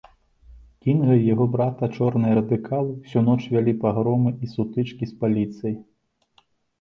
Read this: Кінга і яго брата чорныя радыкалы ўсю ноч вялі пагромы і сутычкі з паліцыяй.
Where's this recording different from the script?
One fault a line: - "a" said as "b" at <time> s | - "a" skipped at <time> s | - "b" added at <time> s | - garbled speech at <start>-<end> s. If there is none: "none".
none